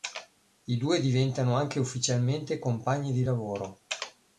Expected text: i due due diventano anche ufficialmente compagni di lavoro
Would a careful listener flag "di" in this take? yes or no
no